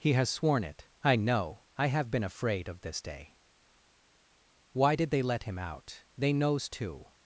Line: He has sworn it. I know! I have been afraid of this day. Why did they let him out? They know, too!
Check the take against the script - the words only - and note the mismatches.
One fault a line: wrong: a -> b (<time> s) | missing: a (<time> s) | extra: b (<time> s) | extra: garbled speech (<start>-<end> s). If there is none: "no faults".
wrong: know -> knows (6.3 s)